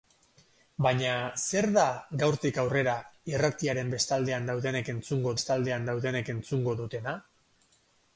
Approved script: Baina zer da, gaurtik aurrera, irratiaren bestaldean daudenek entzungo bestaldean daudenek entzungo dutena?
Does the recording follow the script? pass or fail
pass